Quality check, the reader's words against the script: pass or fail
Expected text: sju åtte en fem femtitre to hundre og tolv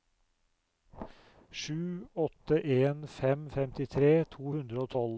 pass